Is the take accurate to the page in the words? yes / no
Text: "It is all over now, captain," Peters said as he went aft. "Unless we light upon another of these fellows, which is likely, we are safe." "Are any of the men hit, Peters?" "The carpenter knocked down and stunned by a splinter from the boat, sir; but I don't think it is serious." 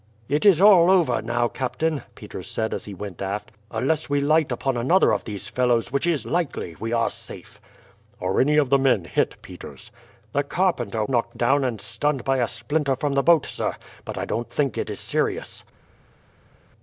yes